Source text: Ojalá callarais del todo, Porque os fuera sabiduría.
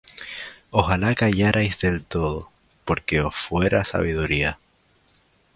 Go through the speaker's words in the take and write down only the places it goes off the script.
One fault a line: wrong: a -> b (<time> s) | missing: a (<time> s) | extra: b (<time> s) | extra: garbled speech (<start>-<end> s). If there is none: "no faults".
no faults